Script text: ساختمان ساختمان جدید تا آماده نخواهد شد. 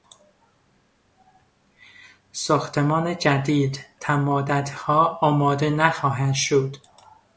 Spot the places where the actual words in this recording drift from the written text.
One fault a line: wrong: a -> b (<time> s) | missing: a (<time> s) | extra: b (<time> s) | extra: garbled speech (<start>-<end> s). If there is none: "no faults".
missing: ساختمان (3.2 s)
extra: مدتها (4.2 s)